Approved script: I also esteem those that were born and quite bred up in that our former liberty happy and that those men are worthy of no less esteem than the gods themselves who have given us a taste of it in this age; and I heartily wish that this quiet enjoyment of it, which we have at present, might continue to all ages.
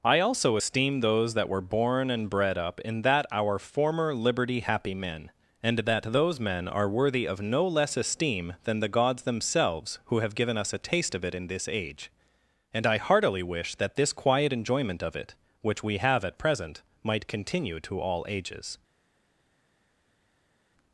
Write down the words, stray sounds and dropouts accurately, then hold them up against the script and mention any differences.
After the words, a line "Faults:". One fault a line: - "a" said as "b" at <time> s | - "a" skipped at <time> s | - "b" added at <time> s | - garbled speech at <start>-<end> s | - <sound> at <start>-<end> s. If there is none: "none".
I also esteem those that were born and bred up in that our former liberty happy men, and that those men are worthy of no less esteem than the gods themselves who have given us a taste of it in this age; and I heartily wish that this quiet enjoyment of it, which we have at present, might continue to all ages.
Faults:
- "quite" skipped at 2.3 s
- "men" added at 4.9 s